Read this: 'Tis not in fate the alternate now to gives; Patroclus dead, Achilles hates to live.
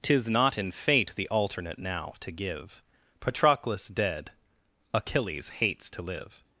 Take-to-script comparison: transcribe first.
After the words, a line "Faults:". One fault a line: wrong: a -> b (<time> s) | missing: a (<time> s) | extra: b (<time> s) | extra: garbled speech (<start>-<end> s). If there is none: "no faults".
'Tis not in fate the alternate now to give; Patroclus dead, Achilles hates to live.
Faults:
wrong: gives -> give (2.3 s)